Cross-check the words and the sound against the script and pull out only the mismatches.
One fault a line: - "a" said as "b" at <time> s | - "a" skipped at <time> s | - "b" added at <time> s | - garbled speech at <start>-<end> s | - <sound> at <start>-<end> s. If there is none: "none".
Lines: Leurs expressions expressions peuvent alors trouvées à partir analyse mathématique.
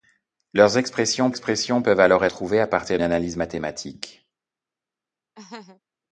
- laugh at 5.3-5.8 s